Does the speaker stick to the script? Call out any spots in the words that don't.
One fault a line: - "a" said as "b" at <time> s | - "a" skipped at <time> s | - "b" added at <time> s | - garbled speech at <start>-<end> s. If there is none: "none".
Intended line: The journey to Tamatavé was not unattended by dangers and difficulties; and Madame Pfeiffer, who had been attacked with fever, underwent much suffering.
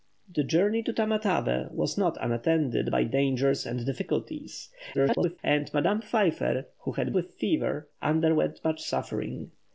- garbled speech at 4.9-5.4 s
- "been attacked" skipped at 7.1 s